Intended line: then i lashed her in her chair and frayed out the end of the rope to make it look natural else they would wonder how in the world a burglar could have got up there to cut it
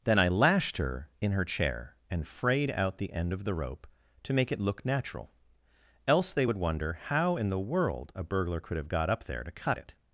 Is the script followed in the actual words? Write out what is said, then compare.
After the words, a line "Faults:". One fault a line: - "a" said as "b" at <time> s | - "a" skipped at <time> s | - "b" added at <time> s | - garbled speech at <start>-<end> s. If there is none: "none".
then i lashed her in her chair and frayed out the end of the rope to make it look natural else they would wonder how in the world a burglar could have got up there to cut it
Faults:
none